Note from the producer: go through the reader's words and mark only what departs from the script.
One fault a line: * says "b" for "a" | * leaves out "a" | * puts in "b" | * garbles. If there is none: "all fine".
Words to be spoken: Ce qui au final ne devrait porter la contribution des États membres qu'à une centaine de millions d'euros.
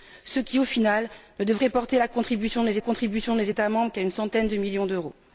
* puts in "contribution des"